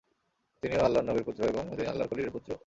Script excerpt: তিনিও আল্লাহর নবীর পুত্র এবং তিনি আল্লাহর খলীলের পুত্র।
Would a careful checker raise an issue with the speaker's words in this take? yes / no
no